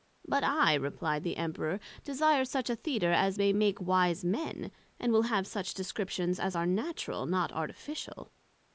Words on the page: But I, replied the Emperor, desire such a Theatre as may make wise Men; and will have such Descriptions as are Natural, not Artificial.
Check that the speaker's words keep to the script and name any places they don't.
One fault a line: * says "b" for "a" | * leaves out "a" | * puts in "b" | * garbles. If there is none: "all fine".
all fine